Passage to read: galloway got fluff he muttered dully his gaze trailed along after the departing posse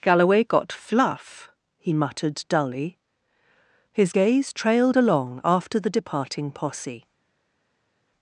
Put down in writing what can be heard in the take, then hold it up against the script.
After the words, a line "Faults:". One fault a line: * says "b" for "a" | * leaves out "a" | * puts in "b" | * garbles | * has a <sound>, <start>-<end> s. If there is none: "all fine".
galloway got fluff he muttered dully his gaze trailed along after the departing posse
Faults:
all fine